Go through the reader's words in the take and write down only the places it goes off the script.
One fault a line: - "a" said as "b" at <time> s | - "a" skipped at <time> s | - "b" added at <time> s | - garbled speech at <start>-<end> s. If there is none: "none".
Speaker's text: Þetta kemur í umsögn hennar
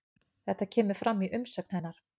- "fram" added at 1.0 s